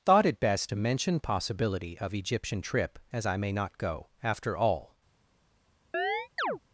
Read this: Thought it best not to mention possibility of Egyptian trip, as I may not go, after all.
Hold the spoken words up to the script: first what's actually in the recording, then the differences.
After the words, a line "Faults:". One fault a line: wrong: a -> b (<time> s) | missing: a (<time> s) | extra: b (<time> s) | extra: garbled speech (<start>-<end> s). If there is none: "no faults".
Thought it best to mention possibility of Egyptian trip, as I may not go, after all.
Faults:
missing: not (0.7 s)